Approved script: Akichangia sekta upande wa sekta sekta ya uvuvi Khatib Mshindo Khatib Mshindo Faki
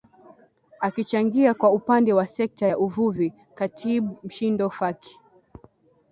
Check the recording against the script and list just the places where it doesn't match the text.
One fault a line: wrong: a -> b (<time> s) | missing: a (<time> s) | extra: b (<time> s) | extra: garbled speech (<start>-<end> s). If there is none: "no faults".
wrong: sekta -> kwa (1.5 s)
missing: sekta (2.7 s)
missing: Khatib Mshindo (4.7 s)